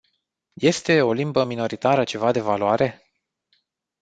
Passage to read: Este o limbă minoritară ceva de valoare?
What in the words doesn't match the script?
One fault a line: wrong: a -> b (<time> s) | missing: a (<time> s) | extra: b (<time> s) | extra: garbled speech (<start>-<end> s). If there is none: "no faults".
no faults